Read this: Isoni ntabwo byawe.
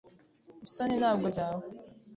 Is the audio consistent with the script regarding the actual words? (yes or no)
yes